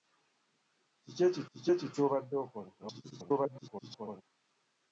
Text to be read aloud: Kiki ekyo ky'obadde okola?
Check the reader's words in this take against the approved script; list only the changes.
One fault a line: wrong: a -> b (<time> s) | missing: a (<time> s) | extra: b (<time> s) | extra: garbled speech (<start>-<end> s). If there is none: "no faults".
extra: kiki ekyo (1.5 s)
extra: garbled speech (2.8-4.2 s)